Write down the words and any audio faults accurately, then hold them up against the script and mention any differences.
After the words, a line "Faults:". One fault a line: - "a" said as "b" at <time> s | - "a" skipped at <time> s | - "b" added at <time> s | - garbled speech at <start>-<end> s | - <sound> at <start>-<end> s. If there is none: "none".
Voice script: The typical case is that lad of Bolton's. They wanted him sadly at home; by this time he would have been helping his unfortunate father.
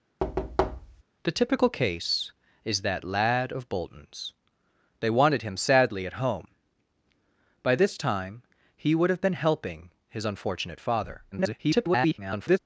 The typical case is that lad of Bolton's. They wanted him sadly at home; by this time he would have been helping his unfortunate father. [garbled]
Faults:
- thud at 0.2-1.0 s
- garbled speech at 11.3-12.6 s